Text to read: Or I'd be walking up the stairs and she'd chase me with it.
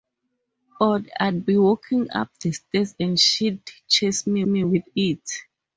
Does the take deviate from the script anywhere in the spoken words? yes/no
yes